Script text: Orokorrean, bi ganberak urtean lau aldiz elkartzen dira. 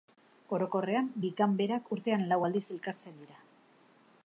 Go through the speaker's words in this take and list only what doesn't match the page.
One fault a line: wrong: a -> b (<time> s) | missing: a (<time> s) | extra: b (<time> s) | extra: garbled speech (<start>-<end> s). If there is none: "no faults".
no faults